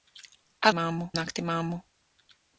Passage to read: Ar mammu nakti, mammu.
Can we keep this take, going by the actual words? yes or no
yes